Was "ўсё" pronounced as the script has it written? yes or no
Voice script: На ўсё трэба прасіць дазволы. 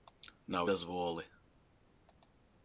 no